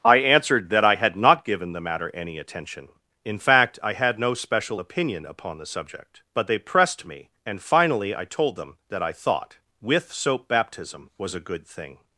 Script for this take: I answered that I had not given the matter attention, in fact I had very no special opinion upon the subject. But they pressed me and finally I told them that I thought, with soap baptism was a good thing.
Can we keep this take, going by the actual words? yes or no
no